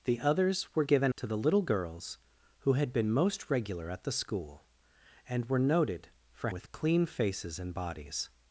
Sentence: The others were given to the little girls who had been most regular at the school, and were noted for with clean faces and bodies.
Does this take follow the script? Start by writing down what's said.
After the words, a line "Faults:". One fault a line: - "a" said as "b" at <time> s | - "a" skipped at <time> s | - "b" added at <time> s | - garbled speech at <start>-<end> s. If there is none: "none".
The others were given to the little girls who had been most regular at the school, and were noted for with clean faces and bodies.
Faults:
none